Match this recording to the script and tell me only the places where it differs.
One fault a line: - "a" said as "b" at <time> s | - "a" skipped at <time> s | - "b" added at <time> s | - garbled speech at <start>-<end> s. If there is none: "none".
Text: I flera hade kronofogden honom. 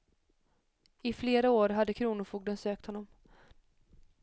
- "år" added at 1.5 s
- "sökt" added at 2.6 s